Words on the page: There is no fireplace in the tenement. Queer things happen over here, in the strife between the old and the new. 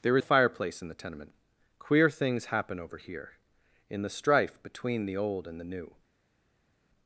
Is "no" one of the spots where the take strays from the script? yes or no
yes